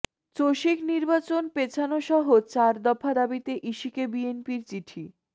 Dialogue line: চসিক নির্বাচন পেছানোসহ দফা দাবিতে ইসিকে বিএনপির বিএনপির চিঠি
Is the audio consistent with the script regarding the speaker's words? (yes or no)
no